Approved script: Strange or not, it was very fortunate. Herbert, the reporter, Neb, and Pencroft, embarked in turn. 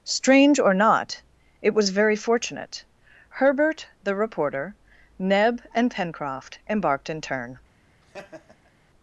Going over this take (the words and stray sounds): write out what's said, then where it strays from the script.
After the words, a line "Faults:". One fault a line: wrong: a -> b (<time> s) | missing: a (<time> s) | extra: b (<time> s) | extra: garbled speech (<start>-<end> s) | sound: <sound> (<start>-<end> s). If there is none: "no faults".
Strange or not, it was very fortunate. Herbert, the reporter, Neb, and Pencroft, embarked in turn.
Faults:
sound: laugh (8.0-8.7 s)